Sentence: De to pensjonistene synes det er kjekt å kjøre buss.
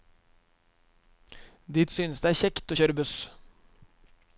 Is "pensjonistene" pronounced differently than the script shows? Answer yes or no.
yes